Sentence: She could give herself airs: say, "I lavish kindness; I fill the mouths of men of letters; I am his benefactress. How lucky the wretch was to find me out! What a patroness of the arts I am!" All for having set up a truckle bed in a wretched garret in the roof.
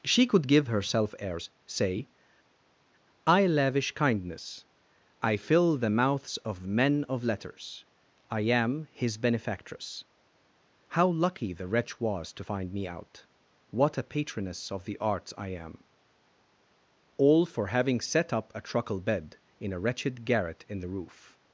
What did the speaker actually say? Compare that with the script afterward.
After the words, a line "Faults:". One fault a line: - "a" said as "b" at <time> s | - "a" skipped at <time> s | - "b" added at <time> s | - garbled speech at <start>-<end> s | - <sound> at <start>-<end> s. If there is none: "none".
She could give herself airs: say, "I lavish kindness; I fill the mouths of men of letters; I am his benefactress. How lucky the wretch was to find me out! What a patroness of the arts I am!" All for having set up a truckle bed in a wretched garret in the roof.
Faults:
none